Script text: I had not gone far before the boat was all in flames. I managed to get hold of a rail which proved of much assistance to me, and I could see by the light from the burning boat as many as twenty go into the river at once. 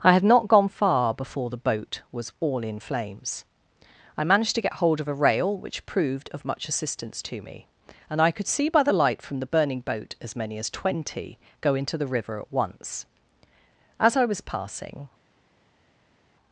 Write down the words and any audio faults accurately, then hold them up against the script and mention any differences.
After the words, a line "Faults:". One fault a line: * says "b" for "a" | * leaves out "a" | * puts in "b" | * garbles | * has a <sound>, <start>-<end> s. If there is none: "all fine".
I had not gone far before the boat was all in flames. I managed to get hold of a rail which proved of much assistance to me, and I could see by the light from the burning boat as many as twenty go into the river at once. As I was passing
Faults:
* puts in "As I was passing"